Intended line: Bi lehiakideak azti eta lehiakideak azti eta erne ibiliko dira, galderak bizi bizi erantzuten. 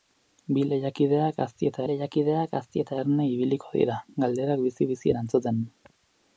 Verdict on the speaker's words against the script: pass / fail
pass